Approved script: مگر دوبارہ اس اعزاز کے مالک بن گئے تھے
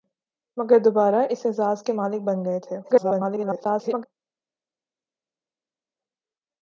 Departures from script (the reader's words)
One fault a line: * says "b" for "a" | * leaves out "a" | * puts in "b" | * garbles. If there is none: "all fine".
* garbles